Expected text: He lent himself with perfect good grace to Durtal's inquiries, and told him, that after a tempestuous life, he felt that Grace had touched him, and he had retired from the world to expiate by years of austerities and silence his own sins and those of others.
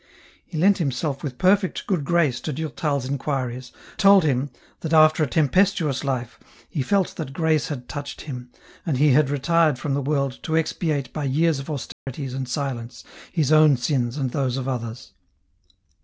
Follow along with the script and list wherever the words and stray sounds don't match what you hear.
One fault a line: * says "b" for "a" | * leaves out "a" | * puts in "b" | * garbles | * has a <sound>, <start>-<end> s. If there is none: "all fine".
* leaves out "and"
* has a dropout, 11.9-12.1 s